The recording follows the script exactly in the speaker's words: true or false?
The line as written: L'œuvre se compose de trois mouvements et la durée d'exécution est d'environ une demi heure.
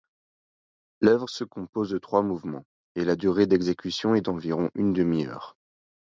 true